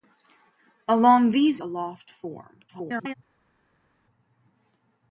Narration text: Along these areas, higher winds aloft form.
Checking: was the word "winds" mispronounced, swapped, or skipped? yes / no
yes